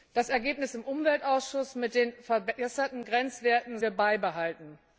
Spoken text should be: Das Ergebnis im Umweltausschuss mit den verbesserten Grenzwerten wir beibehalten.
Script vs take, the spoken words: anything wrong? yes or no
no